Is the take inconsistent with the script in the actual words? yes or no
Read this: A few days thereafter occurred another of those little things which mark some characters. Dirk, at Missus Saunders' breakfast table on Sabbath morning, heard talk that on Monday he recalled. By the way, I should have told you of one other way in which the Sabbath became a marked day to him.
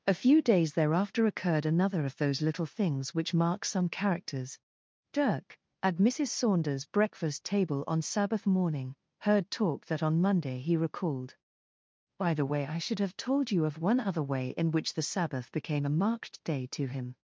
no